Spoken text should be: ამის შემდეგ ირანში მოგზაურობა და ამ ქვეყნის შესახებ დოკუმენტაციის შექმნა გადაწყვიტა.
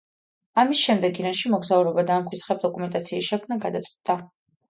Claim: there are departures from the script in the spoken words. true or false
true